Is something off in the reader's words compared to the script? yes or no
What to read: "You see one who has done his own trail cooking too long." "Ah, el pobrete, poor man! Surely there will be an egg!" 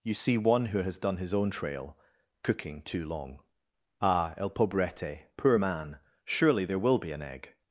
no